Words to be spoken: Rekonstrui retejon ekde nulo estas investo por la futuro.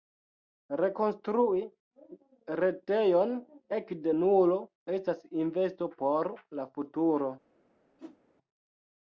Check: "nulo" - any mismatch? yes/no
no